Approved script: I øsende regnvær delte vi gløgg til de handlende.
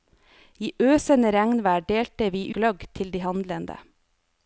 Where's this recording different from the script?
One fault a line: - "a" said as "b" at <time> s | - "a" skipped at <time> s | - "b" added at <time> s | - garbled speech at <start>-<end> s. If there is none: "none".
none